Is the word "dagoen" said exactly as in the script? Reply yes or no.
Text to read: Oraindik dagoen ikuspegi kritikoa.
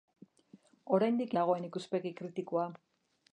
yes